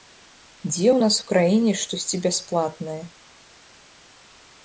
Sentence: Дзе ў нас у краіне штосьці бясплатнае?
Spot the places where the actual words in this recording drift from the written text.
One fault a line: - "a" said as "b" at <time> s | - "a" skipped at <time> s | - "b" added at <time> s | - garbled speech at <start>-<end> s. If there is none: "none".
none